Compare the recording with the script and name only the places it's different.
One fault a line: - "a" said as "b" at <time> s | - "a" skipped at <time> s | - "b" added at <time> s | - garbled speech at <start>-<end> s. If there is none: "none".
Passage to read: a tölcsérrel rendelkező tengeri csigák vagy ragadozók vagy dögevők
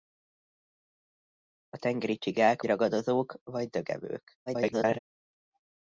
- "tölcsérrel rendelkező" skipped at 1.8 s
- "vagy" skipped at 2.6 s
- garbled speech at 4.5-5.0 s